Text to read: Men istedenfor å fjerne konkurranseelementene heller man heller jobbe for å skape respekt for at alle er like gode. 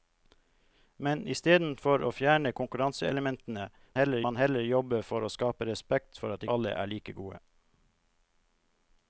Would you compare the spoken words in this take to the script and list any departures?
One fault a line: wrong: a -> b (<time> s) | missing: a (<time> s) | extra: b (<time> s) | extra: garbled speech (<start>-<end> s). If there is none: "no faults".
no faults